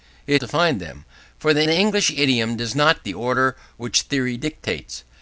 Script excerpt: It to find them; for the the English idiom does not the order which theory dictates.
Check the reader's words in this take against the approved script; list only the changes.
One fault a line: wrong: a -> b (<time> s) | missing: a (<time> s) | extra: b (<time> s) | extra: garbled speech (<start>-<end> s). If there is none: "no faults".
no faults